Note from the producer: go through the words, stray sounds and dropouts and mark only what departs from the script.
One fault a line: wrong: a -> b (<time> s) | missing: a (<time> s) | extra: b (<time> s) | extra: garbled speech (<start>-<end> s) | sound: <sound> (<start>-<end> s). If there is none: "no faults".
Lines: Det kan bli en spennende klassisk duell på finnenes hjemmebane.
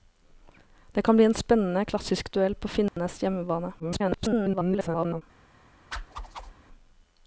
sound: dropout (2.9-3.0 s)
extra: garbled speech (3.8-5.2 s)
sound: whoosh (5.9-6.5 s)